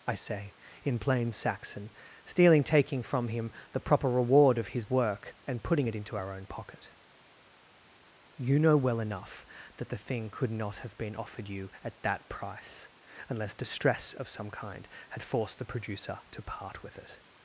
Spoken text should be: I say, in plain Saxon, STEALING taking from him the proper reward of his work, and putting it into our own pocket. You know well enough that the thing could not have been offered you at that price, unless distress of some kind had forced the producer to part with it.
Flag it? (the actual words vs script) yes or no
no